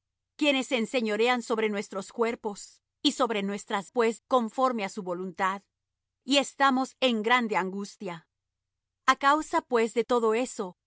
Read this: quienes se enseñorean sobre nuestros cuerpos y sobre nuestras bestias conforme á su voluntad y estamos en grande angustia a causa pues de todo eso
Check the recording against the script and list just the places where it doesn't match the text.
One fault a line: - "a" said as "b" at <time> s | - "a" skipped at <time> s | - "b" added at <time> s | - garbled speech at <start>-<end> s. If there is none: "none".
- "bestias" said as "pues" at 3.9 s